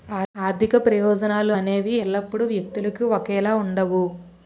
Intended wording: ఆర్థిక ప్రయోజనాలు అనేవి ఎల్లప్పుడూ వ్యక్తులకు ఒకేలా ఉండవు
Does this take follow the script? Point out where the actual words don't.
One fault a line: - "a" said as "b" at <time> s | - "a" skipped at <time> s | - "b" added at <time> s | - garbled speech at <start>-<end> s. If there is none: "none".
none